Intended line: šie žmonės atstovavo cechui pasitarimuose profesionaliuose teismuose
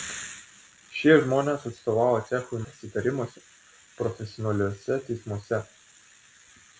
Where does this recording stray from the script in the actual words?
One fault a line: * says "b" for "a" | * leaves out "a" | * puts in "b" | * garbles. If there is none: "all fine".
all fine